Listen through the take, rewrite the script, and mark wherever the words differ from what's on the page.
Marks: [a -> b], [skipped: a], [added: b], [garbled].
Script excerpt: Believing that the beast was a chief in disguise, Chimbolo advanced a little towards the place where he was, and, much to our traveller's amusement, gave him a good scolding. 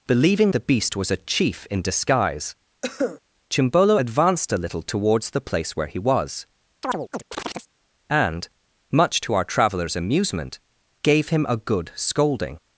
Believing [skipped: that] the beast was a chief in disguise, Chimbolo advanced a little towards the place where he was, and, much to our traveller's amusement, gave him a good scolding.